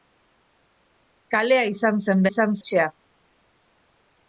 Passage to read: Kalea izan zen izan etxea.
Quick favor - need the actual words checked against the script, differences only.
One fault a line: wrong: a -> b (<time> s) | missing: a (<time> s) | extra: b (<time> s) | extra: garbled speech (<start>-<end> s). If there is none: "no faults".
no faults